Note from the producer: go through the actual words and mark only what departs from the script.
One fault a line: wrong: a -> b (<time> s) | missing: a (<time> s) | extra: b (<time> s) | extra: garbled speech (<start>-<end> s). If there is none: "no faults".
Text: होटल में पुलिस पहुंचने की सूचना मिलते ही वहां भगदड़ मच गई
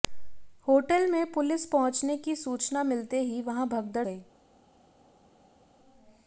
missing: मच (4.1 s)